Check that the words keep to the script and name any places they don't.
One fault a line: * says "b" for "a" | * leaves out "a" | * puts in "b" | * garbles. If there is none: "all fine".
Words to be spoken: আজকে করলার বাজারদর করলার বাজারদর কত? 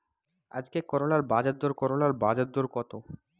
all fine